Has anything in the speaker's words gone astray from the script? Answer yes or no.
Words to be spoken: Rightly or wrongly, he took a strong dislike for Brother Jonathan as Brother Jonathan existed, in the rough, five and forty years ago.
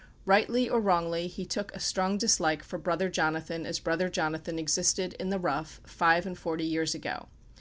no